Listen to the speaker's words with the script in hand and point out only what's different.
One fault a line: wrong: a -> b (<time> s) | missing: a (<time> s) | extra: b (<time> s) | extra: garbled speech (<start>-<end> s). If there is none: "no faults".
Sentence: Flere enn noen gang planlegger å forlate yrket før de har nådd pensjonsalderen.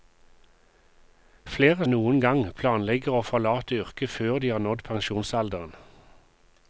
no faults